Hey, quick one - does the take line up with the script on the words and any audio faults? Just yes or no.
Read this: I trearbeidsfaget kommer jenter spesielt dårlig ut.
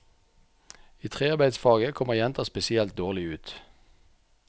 yes